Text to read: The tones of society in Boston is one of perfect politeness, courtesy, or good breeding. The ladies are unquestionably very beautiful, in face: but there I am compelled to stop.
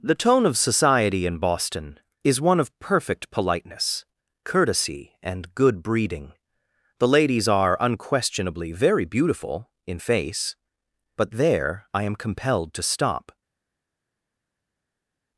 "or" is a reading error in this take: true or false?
true